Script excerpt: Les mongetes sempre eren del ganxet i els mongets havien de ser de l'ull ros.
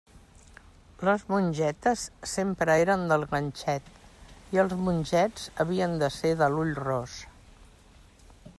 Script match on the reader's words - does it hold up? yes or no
yes